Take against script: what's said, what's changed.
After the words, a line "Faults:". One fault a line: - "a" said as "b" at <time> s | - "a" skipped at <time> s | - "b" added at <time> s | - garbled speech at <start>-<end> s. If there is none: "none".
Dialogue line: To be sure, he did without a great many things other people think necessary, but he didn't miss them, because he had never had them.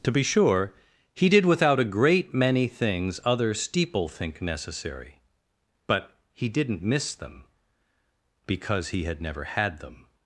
To be sure, he did without a great many things other steeple think necessary, but he didn't miss them, because he had never had them.
Faults:
- "people" said as "steeple" at 3.5 s